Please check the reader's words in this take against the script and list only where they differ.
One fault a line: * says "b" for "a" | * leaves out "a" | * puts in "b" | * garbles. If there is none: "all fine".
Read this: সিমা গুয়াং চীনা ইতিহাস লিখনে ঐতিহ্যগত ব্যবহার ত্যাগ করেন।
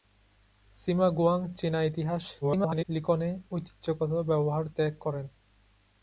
* garbles